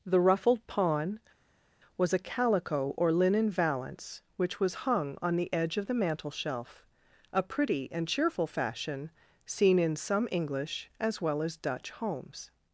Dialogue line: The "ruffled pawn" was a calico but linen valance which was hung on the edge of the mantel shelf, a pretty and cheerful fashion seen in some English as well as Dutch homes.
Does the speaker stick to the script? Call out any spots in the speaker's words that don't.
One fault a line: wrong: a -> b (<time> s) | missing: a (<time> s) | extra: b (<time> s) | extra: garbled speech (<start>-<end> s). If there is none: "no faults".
wrong: but -> or (3.0 s)